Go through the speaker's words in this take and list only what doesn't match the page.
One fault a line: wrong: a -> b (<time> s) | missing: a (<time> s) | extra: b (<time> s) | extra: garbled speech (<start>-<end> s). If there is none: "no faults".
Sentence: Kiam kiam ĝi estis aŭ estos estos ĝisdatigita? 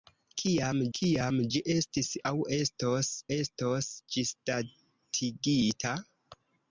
no faults